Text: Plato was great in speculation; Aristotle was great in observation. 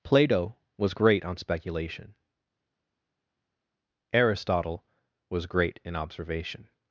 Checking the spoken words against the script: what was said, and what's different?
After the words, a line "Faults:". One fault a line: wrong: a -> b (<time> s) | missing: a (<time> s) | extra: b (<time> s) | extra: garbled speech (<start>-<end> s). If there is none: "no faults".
Plato was great on speculation; Aristotle was great in observation.
Faults:
wrong: in -> on (1.2 s)